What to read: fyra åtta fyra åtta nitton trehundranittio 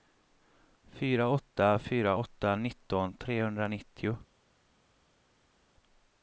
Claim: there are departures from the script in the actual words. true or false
false